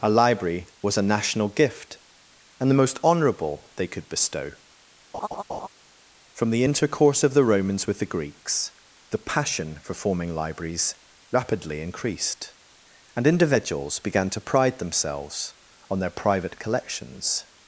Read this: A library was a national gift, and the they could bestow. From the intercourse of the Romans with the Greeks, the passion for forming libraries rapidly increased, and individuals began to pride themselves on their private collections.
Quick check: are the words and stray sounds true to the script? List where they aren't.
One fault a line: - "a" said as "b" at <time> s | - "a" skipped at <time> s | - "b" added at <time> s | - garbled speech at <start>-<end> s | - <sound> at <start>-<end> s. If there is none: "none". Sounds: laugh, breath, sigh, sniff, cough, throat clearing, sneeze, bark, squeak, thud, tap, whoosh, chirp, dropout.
- "most honourable" added at 2.8 s
- laugh at 5.1-5.7 s